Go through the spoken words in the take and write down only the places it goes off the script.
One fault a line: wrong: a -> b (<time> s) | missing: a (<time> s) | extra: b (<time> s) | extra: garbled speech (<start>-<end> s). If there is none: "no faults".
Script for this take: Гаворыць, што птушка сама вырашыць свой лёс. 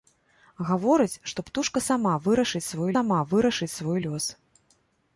extra: сама вырашыць свой (2.9 s)